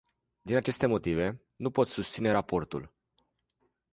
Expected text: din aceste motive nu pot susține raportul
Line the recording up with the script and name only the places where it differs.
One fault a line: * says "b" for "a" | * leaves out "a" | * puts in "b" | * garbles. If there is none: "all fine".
all fine